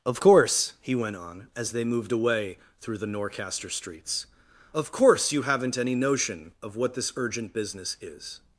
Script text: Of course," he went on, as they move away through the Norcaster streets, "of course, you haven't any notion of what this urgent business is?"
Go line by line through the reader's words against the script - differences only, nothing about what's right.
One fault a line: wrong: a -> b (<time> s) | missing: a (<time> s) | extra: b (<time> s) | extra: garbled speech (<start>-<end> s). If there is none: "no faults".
wrong: move -> moved (1.8 s)